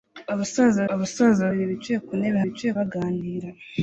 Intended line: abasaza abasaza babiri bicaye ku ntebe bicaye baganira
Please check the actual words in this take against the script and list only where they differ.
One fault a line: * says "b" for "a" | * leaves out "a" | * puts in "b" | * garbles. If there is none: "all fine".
all fine